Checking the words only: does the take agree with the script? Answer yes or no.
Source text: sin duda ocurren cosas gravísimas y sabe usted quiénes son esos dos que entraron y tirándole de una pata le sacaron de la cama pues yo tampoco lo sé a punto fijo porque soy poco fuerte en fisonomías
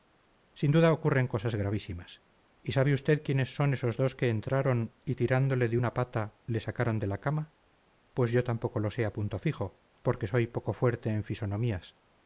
yes